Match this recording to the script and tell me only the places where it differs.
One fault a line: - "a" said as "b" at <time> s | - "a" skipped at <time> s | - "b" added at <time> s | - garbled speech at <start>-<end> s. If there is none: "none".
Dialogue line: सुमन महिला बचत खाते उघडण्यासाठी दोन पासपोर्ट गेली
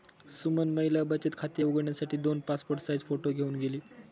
- "साइज फोटो घेऊन" added at 2.8 s